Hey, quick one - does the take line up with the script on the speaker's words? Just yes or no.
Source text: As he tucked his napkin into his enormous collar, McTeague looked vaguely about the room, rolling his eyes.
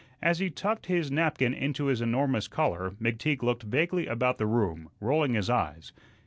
yes